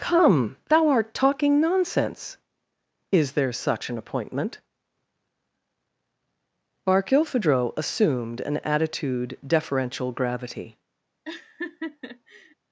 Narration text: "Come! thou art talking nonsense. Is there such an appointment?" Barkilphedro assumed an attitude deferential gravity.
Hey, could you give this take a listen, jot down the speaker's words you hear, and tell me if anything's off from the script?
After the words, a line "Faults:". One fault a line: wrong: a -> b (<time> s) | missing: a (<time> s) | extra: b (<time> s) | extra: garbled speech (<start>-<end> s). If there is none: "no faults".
"Come! thou art talking nonsense. Is there such an appointment?" Barkilphedro assumed an attitude deferential gravity.
Faults:
no faults